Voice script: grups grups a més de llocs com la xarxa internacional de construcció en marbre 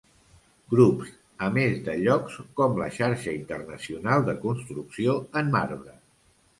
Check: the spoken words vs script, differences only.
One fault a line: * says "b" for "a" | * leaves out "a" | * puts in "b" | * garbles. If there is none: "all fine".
* leaves out "grups"